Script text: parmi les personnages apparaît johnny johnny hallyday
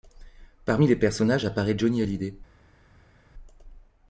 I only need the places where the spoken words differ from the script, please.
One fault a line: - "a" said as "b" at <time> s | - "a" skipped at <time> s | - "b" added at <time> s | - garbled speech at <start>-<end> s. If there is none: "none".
- "johnny" skipped at 2.0 s